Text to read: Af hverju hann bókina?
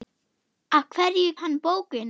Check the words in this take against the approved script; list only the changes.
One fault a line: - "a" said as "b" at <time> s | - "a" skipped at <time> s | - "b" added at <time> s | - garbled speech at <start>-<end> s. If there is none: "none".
none